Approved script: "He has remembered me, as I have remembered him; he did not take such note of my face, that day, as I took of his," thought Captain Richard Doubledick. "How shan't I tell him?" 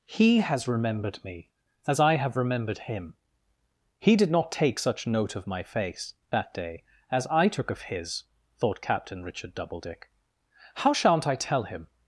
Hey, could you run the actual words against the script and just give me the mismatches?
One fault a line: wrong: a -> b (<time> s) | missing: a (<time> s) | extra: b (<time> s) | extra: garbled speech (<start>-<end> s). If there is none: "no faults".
no faults